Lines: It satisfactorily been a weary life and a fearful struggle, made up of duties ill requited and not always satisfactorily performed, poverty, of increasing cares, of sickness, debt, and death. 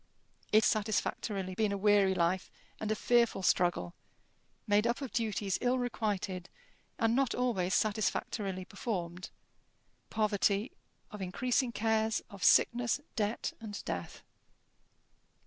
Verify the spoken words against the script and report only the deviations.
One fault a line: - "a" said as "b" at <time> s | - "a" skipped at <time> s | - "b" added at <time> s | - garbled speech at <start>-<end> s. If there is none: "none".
none